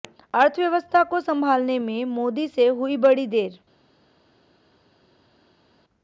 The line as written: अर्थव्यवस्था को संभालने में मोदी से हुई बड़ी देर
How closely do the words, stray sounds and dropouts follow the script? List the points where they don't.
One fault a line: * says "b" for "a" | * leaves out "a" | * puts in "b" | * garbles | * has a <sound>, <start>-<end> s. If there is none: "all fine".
all fine